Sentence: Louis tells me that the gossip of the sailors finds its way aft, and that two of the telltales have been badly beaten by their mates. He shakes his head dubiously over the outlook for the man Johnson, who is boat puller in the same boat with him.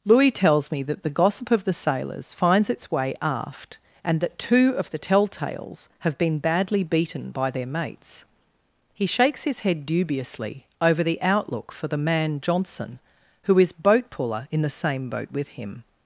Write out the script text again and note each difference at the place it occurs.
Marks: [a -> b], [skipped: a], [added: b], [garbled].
Louis tells me that the gossip of the sailors finds its way aft, and that two of the telltales have been badly beaten by their mates. He shakes his head dubiously over the outlook for the man Johnson, who is boat puller in the same boat with him.